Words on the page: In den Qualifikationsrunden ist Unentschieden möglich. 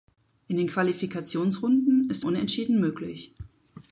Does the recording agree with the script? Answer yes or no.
yes